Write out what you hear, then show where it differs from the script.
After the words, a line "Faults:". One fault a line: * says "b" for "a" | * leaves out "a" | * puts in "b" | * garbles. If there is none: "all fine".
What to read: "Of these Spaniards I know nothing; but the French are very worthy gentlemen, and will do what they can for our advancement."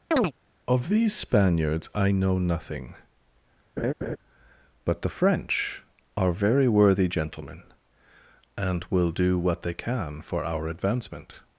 "Of these Spaniards I know nothing; but the French are very worthy gentlemen, and will do what they can for our advancement."
Faults:
all fine